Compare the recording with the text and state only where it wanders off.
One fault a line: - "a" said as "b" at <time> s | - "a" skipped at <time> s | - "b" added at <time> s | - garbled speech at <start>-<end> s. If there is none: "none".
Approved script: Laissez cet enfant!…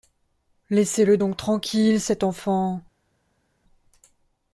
- "le donc tranquille" added at 1.1 s